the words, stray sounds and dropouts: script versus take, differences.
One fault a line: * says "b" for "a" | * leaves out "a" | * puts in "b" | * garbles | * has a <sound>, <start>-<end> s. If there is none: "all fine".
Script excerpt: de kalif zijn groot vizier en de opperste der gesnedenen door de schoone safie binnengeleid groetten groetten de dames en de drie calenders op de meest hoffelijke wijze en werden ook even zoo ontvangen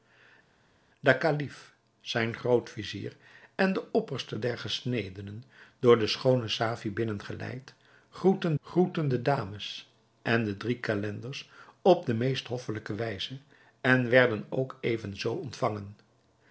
all fine